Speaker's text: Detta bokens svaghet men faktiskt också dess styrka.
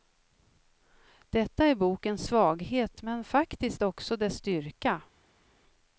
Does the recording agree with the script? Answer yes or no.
no